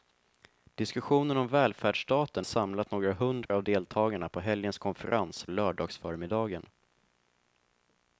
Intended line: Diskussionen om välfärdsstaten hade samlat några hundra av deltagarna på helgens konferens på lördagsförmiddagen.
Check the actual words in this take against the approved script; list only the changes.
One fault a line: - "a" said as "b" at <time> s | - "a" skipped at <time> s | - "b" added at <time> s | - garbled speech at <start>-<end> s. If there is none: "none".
- "hade" skipped at 2.5 s
- "på" skipped at 5.5 s